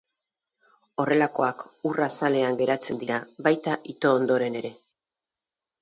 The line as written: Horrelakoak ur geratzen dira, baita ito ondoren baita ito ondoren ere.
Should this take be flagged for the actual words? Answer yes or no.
yes